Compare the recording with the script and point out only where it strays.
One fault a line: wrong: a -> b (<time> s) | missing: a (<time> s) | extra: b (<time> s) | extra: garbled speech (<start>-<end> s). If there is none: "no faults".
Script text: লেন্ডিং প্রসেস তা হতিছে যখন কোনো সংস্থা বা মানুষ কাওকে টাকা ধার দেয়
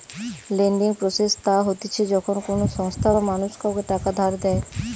no faults